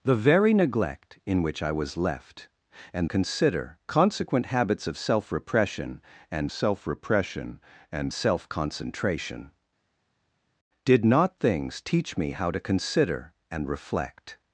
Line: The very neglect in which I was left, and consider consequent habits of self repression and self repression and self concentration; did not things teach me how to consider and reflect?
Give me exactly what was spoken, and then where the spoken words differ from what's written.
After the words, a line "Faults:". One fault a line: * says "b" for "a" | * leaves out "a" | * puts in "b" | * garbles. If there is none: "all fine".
The very neglect in which I was left, and consider consequent habits of self repression and self repression and self concentration; did not things teach me how to consider and reflect?
Faults:
all fine